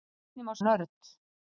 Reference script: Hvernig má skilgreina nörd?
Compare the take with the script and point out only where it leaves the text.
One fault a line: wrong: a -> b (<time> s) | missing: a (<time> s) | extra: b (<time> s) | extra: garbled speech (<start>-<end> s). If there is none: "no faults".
missing: skilgreina (0.6 s)